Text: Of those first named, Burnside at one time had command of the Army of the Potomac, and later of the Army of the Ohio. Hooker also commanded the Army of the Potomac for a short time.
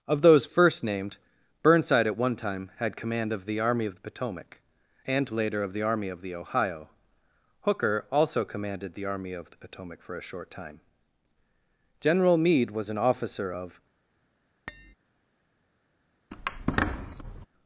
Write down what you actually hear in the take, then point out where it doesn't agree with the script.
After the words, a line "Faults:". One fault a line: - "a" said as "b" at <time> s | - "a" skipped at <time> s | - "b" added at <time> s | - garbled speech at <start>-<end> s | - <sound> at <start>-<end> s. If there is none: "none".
Of those first named, Burnside at one time had command of the Army of the Potomac, and later of the Army of the Ohio. Hooker also commanded the Army of the Potomac for a short time. General Meade was an officer of
Faults:
- "General Meade was an officer of" added at 12.0 s
- tap at 14.7-14.9 s
- squeak at 16.3-17.5 s